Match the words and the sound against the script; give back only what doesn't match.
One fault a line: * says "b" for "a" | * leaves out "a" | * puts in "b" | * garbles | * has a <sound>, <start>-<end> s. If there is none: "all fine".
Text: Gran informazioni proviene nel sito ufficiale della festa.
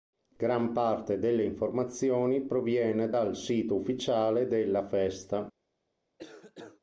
* puts in "parte delle"
* says "dal" for "nel"
* has a cough, 6.2-6.8 s